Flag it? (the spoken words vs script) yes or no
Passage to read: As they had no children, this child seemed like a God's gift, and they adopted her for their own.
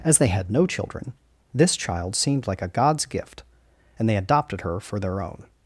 no